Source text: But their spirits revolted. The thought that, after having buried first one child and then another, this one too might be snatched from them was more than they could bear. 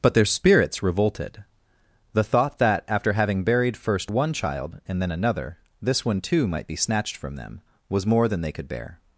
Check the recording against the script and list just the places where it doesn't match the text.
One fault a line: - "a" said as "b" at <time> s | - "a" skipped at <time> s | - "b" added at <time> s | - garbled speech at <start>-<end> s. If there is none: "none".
none